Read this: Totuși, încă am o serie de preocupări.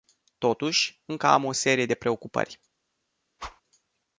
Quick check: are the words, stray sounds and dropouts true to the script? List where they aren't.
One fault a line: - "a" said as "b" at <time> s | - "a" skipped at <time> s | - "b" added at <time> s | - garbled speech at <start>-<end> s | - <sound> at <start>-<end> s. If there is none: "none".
- whoosh at 3.4-3.6 s